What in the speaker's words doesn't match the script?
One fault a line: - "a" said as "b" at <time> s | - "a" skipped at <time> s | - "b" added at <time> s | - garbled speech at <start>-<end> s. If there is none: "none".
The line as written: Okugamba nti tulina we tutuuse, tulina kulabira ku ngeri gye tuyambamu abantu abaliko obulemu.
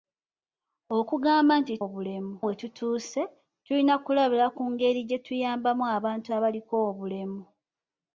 - "tulina" said as "obulemu" at 1.8 s